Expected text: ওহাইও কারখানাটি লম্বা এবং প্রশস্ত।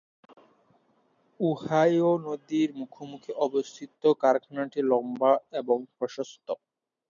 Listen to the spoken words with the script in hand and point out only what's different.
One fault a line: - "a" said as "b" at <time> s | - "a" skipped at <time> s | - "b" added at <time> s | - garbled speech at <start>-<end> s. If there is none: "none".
- "নদীর মুখোমুখি অবস্থিত" added at 2.2 s